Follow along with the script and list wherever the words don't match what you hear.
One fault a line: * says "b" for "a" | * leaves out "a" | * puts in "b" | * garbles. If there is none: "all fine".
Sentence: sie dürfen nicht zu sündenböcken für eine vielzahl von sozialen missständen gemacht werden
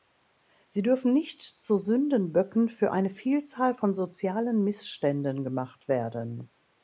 all fine